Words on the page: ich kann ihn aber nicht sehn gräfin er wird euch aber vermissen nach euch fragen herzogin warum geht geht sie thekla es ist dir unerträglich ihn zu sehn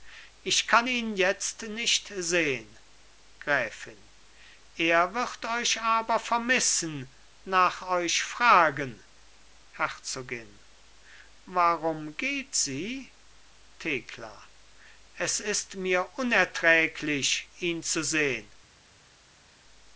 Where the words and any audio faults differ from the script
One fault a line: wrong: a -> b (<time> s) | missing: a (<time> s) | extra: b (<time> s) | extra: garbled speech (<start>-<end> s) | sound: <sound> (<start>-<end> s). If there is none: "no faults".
wrong: aber -> jetzt (1.2 s)
missing: geht (12.5 s)
wrong: dir -> mir (15.7 s)